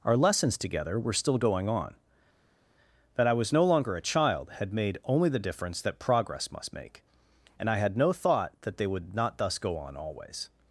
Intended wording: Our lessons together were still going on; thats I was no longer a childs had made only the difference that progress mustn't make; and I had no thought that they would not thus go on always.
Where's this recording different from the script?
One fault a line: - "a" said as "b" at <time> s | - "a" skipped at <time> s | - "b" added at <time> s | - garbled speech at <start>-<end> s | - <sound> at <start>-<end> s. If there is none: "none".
- "thats" said as "that" at 3.2 s
- "childs" said as "child" at 4.0 s
- "mustn't" said as "must" at 6.5 s